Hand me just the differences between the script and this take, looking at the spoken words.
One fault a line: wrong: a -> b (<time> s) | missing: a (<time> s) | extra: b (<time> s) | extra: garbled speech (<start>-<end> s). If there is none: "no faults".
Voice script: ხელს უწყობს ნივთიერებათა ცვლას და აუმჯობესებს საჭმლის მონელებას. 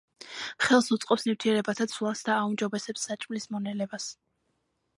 no faults